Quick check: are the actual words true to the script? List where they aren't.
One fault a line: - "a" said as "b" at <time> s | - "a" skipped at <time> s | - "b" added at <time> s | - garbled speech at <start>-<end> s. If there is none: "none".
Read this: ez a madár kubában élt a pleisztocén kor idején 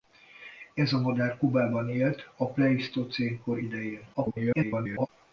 - garbled speech at 4.1-5.1 s